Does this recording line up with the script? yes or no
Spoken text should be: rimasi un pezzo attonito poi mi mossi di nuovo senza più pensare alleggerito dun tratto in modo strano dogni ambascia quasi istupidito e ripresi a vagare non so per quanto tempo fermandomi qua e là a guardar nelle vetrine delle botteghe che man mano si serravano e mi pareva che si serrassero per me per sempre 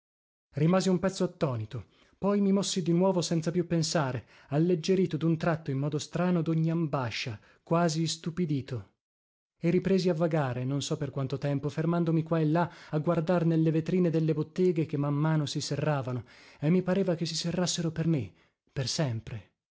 yes